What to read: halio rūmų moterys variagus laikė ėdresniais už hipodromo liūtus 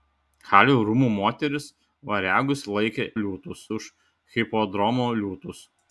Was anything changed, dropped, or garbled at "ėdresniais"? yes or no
yes